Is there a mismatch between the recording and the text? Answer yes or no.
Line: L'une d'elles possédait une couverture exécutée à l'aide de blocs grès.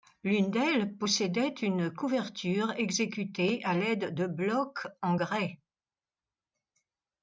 yes